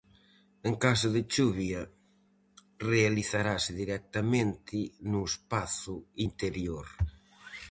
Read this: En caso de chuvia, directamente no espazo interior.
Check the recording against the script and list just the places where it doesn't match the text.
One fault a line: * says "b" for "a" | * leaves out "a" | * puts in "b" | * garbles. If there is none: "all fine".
* puts in "realizarase"